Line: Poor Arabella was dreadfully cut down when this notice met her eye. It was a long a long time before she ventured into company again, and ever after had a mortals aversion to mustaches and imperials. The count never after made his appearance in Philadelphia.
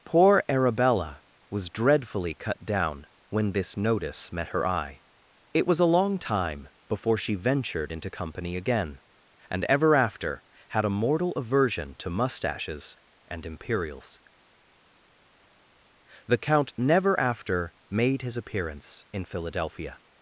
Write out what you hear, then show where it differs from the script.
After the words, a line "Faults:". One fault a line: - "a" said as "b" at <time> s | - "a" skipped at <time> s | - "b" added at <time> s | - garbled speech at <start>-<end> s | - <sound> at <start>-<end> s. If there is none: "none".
Poor Arabella was dreadfully cut down when this notice met her eye. It was a long time before she ventured into company again, and ever after had a mortal aversion to mustaches and imperials. The count never after made his appearance in Philadelphia.
Faults:
- "a long" skipped at 6.2 s
- "mortals" said as "mortal" at 10.9 s